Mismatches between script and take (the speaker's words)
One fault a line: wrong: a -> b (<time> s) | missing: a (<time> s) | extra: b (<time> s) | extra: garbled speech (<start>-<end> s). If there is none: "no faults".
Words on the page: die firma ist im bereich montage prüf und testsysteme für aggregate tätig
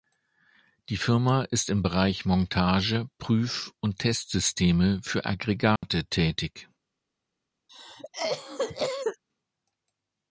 no faults